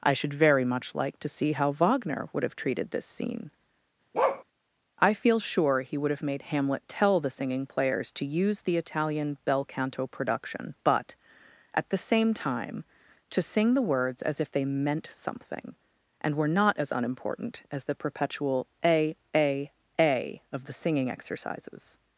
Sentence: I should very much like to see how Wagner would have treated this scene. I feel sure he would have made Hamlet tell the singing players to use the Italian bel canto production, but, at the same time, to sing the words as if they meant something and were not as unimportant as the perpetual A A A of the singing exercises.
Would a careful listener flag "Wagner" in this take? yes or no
no